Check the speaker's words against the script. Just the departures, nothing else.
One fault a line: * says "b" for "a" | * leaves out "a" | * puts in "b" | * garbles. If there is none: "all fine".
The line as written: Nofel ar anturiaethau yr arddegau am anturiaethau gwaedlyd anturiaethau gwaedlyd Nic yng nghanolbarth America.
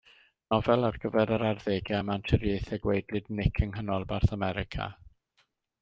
* says "gyfer" for "anturiaethau"
* leaves out "anturiaethau gwaedlyd"